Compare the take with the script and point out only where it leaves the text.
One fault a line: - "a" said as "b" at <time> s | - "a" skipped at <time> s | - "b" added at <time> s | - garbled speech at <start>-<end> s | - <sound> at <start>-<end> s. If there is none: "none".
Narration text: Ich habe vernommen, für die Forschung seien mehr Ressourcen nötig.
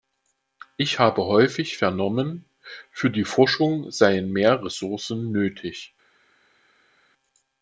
- "häufig" added at 1.3 s